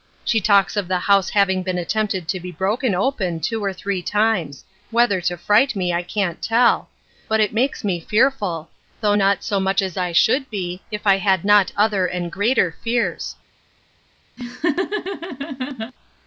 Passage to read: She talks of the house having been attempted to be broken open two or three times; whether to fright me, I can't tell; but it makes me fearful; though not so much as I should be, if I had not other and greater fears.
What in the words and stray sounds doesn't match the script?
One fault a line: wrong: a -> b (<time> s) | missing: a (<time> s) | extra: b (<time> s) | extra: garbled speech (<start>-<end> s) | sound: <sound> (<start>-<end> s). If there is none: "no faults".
sound: laugh (14.4-15.9 s)